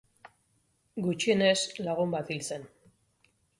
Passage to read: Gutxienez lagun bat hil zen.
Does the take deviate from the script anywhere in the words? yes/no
no